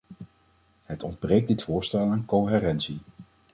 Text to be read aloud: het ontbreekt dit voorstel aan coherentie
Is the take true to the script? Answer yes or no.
yes